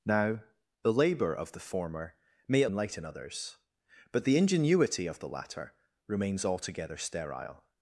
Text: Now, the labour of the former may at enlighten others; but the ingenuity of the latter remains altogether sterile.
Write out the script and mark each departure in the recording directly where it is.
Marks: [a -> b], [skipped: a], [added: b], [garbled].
Now, the labour of the former may at enlighten others; but the ingenuity of the latter remains altogether sterile.